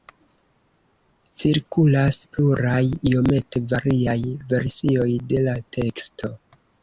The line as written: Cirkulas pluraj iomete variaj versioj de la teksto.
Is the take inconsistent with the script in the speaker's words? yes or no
no